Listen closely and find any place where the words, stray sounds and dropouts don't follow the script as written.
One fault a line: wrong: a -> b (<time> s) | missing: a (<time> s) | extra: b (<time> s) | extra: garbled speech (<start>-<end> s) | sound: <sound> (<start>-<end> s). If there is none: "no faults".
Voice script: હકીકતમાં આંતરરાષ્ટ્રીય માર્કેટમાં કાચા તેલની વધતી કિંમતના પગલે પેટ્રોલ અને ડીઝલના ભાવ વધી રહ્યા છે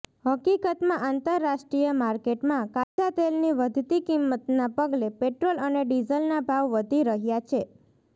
sound: dropout (2.8-3.0 s)